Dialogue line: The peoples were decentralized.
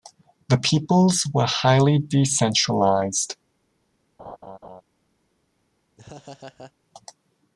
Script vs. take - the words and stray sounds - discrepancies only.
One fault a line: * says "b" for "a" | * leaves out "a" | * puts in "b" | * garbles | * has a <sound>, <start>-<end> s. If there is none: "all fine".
* puts in "highly"
* has a laugh, 4.2-4.8 s
* has a laugh, 6.0-6.7 s